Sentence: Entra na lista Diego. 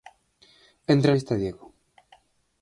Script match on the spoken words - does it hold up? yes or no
no